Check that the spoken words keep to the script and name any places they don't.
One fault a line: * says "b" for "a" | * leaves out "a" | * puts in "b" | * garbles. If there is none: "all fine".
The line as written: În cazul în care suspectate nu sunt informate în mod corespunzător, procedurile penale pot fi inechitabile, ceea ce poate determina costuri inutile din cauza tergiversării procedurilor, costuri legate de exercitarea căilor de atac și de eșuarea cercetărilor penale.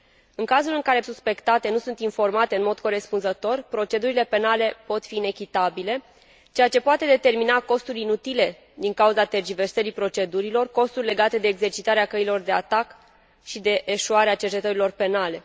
all fine